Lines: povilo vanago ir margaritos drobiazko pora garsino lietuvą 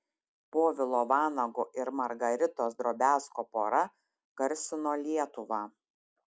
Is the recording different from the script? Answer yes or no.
no